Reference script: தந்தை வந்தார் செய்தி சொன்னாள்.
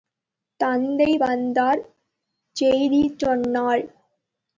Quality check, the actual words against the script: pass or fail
pass